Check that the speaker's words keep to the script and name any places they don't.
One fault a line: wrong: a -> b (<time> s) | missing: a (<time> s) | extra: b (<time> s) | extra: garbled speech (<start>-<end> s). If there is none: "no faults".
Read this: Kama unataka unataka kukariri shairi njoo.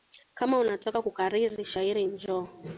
missing: unataka (1.0 s)